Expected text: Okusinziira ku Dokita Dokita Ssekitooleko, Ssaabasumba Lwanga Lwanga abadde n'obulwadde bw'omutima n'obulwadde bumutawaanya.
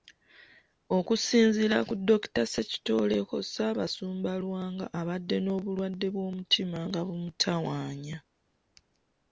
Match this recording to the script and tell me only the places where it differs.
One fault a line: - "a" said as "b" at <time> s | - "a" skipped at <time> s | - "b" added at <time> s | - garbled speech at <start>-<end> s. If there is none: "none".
- "Dokita" skipped at 2.4 s
- "Lwanga" skipped at 4.9 s
- "n'obulwadde" said as "nga" at 6.9 s